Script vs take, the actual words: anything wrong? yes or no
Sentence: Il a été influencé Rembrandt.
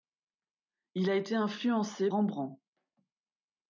no